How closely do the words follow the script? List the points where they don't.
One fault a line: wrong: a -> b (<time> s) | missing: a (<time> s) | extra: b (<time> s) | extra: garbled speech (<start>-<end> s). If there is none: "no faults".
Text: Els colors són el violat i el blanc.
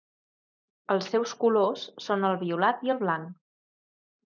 extra: seus (1.1 s)